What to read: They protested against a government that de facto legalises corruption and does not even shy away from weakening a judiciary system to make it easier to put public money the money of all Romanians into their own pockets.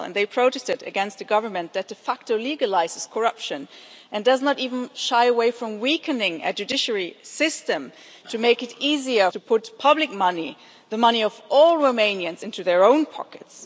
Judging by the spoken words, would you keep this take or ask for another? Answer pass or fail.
pass